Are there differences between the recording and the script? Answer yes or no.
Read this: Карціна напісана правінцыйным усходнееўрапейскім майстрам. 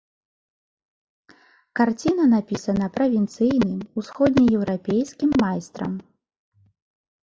no